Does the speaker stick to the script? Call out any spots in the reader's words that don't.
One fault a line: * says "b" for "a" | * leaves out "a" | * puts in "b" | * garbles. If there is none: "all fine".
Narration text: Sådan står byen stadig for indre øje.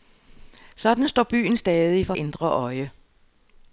all fine